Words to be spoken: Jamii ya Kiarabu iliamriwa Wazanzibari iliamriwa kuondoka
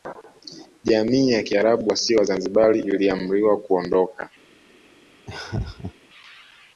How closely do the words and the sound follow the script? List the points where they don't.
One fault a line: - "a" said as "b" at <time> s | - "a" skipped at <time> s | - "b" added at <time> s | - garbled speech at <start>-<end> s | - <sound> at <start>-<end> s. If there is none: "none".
- "iliamriwa" said as "wasio" at 1.9 s
- laugh at 5.3-5.9 s